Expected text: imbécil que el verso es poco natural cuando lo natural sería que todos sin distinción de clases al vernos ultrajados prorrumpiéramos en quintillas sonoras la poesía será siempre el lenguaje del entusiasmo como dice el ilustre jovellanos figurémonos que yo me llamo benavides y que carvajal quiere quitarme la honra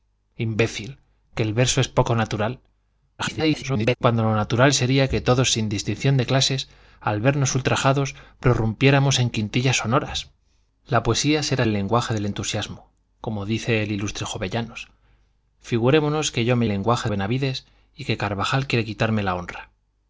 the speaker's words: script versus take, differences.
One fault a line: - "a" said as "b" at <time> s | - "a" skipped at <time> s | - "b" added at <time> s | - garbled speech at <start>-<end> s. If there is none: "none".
- garbled speech at 3.2-4.0 s
- "siempre" skipped at 11.7 s
- "llamo" said as "lenguaje" at 16.7 s